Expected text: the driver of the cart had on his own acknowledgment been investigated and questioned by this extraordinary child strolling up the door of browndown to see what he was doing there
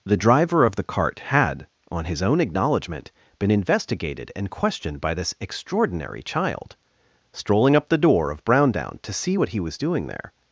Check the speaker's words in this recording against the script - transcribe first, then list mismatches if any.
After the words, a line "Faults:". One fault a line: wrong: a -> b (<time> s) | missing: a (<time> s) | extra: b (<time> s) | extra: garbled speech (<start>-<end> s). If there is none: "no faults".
the driver of the cart had on his own acknowledgment been investigated and questioned by this extraordinary child strolling up the door of browndown to see what he was doing there
Faults:
no faults